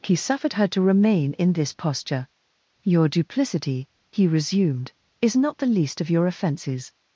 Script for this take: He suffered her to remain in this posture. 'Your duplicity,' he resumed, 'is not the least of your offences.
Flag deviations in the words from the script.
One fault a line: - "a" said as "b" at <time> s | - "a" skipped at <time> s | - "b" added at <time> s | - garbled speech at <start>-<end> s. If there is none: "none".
none